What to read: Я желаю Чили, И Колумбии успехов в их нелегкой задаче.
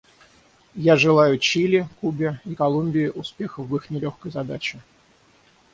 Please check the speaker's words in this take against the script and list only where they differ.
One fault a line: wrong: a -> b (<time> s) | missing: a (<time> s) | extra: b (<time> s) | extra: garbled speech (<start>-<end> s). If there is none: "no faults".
extra: Кубе (2.0 s)